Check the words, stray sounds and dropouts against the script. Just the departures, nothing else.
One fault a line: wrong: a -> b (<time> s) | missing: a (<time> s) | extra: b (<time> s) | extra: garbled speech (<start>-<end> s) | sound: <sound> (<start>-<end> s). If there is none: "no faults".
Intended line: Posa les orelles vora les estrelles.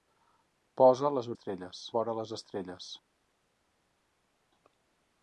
wrong: orelles -> estrelles (1.3 s)